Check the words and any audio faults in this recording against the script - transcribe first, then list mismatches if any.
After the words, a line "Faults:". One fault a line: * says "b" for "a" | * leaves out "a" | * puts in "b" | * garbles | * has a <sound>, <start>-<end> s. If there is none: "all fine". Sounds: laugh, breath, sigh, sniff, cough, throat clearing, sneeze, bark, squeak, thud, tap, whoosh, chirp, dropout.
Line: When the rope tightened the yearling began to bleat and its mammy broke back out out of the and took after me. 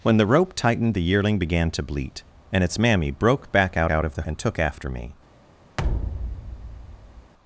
When the rope tightened the yearling began to bleat and its mammy broke back out out of the and took after me.
Faults:
* has a thud, 5.8-7.3 s